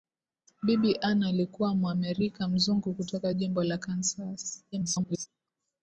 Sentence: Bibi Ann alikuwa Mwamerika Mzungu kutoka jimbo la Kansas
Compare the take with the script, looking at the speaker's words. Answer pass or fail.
fail